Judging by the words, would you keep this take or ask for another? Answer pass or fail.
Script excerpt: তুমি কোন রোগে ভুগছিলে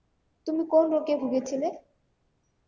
pass